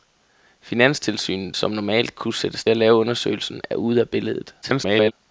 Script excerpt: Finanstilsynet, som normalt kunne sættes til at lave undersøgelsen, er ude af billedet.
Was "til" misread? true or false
true